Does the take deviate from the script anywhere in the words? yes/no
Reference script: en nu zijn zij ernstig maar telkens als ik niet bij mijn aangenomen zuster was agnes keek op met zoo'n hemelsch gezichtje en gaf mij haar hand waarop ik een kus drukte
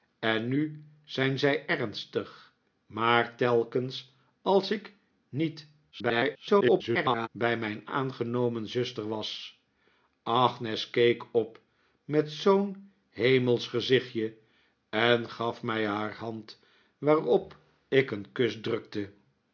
yes